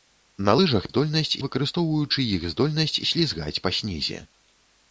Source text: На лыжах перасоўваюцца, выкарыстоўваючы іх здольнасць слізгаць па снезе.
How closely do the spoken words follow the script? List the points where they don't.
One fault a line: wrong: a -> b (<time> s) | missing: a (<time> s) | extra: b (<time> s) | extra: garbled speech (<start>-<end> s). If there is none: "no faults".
wrong: перасоўваюцца -> здольнасць (0.9 s)